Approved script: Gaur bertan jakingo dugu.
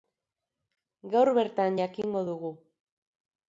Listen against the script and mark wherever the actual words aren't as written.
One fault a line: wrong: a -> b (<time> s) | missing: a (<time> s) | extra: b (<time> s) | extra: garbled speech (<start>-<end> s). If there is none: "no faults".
no faults